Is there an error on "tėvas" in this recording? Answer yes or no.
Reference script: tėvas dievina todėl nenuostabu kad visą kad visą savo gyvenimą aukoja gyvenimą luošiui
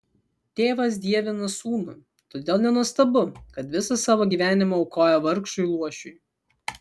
no